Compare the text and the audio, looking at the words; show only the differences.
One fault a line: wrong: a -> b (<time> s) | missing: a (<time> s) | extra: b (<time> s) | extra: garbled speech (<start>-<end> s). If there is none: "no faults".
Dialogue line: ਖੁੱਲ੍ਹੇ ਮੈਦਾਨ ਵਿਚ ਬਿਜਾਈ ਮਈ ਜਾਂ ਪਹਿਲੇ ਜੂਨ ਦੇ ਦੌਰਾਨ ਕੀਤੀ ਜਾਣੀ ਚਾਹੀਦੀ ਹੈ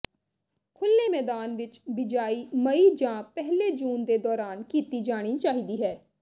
no faults